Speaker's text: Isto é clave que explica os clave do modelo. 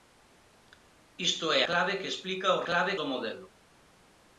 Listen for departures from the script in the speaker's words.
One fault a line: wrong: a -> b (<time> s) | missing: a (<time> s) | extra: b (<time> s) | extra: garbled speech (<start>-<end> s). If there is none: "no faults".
no faults